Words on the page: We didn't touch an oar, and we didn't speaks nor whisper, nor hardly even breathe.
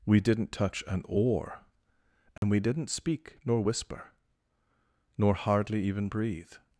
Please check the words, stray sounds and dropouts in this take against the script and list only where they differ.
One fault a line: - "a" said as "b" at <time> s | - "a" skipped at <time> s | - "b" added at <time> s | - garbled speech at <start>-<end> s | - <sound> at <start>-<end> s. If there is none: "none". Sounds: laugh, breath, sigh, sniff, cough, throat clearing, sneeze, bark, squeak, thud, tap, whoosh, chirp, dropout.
- dropout at 2.4-2.4 s
- "speaks" said as "speak" at 2.9 s